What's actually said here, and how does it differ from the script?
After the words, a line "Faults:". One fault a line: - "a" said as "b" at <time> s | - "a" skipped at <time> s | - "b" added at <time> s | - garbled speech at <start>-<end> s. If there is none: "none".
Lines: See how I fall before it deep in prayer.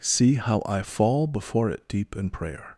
See how I fall before it deep in prayer.
Faults:
none